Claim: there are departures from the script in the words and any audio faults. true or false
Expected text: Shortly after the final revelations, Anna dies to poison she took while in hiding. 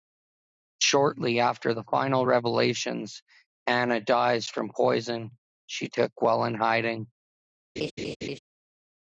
true